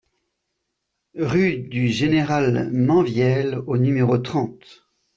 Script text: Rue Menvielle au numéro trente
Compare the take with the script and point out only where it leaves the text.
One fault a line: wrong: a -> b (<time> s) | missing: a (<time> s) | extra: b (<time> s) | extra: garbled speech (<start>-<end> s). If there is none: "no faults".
extra: du Général (1.6 s)